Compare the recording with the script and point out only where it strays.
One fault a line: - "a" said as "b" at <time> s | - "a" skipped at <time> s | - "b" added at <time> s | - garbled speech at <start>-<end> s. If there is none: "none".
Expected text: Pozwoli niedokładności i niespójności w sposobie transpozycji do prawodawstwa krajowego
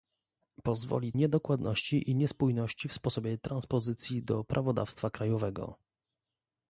none